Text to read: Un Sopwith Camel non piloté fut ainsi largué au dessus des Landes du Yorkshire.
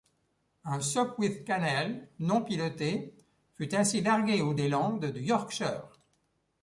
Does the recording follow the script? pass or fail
fail